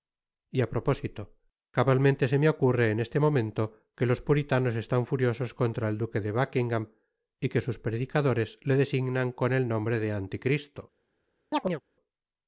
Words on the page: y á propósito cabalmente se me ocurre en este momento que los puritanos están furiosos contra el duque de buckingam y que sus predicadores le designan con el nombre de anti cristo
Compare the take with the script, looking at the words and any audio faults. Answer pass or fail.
fail